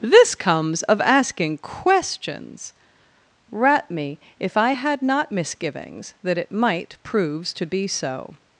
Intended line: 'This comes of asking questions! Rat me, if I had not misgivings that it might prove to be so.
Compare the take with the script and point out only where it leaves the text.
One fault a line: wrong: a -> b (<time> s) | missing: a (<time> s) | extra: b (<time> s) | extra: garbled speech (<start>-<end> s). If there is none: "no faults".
wrong: prove -> proves (7.0 s)